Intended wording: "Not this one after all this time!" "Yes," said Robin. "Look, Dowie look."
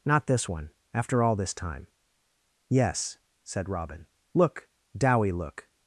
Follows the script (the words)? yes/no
yes